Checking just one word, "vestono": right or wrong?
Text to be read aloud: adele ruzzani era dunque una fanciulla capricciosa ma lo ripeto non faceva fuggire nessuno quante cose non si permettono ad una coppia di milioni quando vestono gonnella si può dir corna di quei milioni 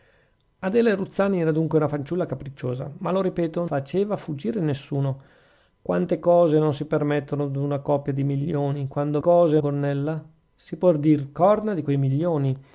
wrong